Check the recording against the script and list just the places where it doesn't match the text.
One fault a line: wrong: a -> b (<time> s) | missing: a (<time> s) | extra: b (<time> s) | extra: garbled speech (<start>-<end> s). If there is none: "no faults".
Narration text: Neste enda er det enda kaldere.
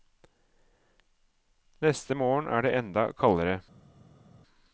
wrong: enda -> morgen (2.1 s)